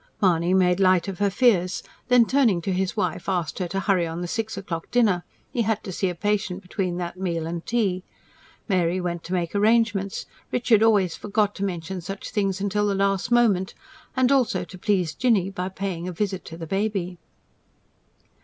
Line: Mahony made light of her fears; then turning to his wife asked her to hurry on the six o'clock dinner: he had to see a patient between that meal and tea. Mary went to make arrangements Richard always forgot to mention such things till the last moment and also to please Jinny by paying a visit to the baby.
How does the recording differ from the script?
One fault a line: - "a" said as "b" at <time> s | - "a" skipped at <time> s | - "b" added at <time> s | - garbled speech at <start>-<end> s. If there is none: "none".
none